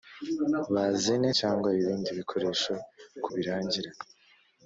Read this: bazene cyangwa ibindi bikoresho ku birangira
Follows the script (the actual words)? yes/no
yes